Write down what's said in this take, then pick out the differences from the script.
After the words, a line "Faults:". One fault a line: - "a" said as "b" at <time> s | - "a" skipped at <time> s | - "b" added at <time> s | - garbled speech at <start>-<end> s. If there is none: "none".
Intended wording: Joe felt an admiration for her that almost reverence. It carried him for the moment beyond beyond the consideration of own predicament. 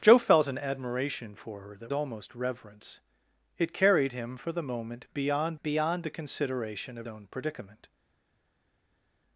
Joe felt an admiration for her that almost reverence. It carried him for the moment beyond beyond the consideration of own predicament.
Faults:
none